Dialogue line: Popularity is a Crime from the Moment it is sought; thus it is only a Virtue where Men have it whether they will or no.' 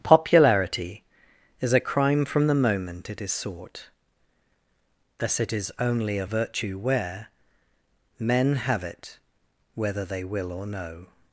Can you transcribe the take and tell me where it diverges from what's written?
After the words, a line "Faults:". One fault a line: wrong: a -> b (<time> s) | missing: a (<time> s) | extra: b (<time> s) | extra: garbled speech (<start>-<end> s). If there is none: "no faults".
Popularity is a Crime from the Moment it is sought; thus it is only a Virtue where Men have it whether they will or no.'
Faults:
no faults